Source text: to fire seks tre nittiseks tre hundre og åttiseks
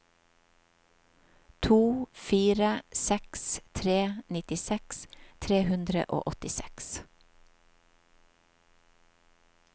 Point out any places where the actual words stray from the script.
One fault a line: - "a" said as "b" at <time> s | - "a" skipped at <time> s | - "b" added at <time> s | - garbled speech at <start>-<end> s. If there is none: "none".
none